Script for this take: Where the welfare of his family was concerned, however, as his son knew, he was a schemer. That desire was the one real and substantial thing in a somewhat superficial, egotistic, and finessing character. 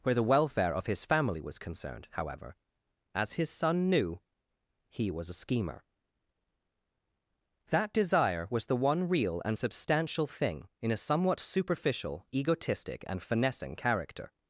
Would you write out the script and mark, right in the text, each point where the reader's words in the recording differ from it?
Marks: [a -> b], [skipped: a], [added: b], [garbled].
Where the welfare of his family was concerned, however, as his son knew, he was a schemer. That desire was the one real and substantial thing in a somewhat superficial, egotistic, and finessing character.